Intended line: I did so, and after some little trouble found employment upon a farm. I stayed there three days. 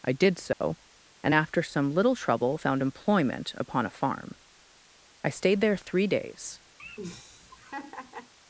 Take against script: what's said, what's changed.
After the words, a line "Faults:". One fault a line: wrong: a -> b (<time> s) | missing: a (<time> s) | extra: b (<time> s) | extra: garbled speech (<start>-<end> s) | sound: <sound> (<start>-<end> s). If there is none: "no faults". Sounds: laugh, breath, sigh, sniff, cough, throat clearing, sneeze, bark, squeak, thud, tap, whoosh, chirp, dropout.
I did so, and after some little trouble found employment upon a farm. I stayed there three days.
Faults:
sound: dropout (0.5-0.6 s)
sound: laugh (6.8-8.3 s)